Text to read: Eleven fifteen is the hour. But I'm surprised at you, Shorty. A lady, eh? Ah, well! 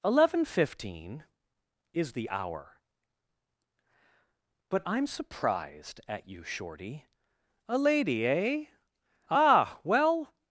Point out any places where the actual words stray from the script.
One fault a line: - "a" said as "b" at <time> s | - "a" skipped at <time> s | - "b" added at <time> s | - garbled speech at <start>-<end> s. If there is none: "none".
none